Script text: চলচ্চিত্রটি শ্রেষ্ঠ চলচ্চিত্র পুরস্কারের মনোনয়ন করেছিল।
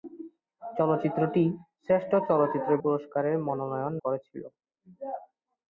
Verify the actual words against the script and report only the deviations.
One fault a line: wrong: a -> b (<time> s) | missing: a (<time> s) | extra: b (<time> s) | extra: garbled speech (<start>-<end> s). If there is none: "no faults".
no faults